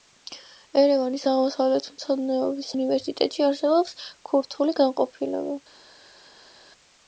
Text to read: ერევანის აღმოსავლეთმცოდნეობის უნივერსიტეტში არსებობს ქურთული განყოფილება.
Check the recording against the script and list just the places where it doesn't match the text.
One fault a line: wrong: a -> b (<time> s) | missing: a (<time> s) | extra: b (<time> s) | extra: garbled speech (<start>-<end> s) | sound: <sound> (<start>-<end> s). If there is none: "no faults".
no faults